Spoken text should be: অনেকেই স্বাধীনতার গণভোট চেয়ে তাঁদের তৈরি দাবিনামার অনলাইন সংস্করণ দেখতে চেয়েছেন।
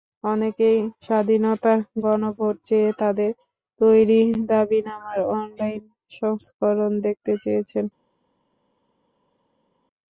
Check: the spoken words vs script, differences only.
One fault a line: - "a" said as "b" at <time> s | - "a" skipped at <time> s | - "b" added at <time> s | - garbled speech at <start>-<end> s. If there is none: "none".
none